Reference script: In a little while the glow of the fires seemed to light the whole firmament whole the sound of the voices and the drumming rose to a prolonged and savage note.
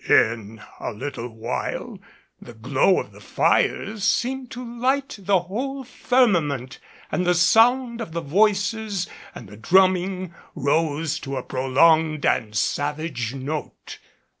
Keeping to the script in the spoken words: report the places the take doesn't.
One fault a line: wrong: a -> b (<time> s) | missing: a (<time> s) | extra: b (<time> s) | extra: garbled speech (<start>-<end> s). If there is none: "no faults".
wrong: whole -> and (7.1 s)